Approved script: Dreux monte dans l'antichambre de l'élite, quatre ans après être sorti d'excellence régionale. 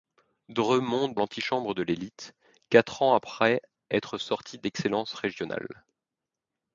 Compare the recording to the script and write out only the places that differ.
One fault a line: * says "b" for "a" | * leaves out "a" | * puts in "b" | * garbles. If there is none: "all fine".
* leaves out "dans"